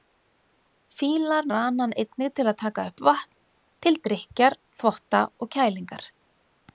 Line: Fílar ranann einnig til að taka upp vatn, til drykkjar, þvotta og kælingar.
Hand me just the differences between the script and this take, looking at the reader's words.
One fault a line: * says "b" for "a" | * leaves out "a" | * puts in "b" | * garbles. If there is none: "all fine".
all fine